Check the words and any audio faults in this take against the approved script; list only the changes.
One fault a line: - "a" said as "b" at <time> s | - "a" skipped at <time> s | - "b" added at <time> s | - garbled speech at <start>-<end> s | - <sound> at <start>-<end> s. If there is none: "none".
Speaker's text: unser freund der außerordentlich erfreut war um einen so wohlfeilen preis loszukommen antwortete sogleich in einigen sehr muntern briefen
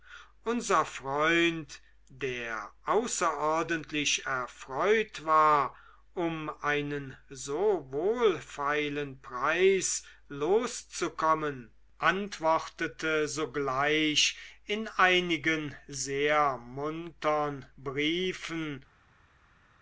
none